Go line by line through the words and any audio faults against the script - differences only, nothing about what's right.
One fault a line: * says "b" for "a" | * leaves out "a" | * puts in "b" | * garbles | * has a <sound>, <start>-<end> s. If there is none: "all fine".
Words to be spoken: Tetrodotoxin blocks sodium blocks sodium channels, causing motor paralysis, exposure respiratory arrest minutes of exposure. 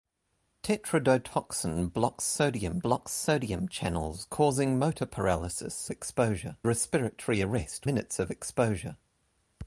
all fine